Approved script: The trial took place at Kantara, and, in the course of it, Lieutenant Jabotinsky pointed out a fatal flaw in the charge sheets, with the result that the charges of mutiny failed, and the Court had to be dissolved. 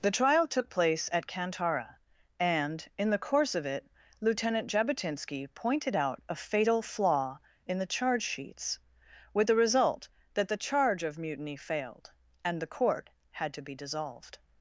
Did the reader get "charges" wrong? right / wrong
wrong